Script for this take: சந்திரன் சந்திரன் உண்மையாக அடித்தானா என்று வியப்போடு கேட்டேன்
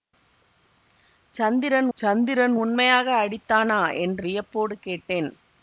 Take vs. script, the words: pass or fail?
pass